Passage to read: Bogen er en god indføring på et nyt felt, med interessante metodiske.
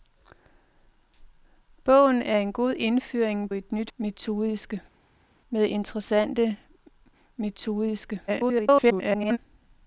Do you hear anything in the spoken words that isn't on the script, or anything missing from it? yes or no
yes